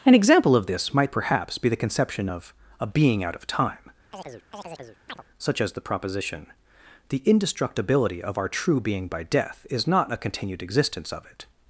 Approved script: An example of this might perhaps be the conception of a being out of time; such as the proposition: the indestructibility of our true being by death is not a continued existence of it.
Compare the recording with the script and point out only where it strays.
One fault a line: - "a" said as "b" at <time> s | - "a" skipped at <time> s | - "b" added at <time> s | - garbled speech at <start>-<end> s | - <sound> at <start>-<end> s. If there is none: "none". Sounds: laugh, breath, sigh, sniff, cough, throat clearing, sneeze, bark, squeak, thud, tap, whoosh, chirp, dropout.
- chirp at 4.1-5.2 s